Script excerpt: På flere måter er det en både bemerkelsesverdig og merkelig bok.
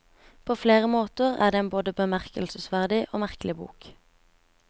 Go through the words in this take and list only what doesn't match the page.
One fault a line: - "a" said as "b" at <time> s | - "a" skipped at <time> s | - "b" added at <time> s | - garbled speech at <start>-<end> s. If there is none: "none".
none